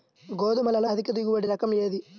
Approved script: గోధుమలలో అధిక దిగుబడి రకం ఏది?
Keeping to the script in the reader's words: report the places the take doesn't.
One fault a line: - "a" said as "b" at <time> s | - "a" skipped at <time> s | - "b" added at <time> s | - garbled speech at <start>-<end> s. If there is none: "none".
none